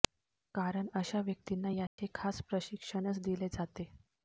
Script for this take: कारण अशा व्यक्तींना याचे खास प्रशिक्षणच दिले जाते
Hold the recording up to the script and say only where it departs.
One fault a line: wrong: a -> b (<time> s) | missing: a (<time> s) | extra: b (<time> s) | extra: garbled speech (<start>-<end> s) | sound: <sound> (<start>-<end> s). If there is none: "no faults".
sound: dropout (1.9-2.0 s)